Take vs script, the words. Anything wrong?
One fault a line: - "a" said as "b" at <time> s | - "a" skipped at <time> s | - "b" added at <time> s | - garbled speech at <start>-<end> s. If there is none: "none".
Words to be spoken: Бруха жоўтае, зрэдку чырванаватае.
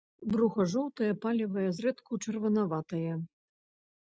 - "палевае" added at 1.2 s